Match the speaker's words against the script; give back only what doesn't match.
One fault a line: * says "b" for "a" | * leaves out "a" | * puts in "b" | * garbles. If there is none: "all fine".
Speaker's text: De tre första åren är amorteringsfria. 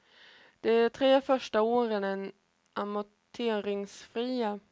all fine